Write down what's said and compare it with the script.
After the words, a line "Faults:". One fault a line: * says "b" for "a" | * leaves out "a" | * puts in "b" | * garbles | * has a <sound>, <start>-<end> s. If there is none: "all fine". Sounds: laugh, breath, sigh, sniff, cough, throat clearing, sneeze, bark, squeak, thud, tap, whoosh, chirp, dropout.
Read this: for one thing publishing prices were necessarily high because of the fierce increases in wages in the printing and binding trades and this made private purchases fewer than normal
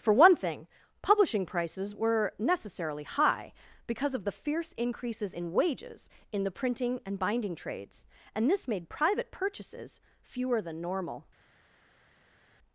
for one thing publishing prices were necessarily high because of the fierce increases in wages in the printing and binding trades and this made private purchases fewer than normal
Faults:
all fine